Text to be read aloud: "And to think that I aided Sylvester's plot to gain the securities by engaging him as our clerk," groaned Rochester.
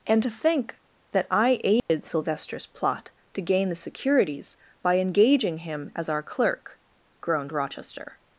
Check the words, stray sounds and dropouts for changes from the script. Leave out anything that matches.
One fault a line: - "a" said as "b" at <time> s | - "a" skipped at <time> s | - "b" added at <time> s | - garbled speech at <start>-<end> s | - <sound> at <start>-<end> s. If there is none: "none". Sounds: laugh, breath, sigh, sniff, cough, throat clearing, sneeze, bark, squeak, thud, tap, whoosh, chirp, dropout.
- dropout at 1.8-1.9 s